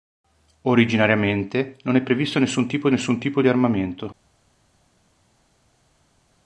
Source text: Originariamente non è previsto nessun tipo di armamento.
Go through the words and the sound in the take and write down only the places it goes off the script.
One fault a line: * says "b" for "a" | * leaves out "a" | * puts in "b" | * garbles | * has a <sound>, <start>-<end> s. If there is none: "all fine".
* puts in "nessun tipo"